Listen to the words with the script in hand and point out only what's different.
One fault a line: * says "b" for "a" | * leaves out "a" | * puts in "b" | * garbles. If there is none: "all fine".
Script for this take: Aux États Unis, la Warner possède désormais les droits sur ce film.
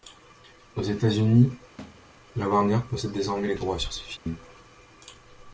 all fine